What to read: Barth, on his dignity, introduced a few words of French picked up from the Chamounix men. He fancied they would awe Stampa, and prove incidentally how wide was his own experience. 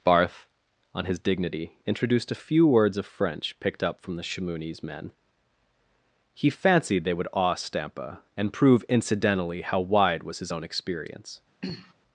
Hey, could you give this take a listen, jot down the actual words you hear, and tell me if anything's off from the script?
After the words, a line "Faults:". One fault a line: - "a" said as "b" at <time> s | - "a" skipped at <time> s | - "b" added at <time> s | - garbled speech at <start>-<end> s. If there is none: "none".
Barth, on his dignity, introduced a few words of French picked up from the Chamounix men. He fancied they would awe Stampa, and prove incidentally how wide was his own experience.
Faults:
none